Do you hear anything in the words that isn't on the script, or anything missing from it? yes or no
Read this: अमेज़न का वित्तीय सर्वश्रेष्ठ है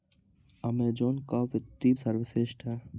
no